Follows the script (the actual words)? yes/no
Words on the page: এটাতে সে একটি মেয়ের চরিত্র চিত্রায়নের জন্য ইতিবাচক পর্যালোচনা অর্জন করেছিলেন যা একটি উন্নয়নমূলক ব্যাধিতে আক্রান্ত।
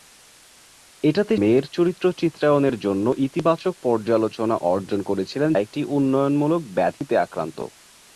no